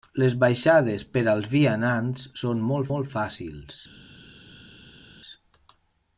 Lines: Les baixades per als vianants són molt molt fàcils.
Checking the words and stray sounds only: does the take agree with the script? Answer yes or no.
yes